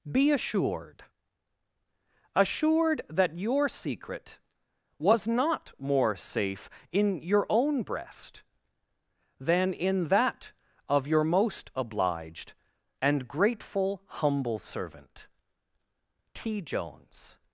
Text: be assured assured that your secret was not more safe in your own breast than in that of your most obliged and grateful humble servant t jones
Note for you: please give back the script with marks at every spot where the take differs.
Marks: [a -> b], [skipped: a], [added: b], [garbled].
be assured assured that your secret was not more safe in your own breast than in that of your most obliged and grateful humble servant t jones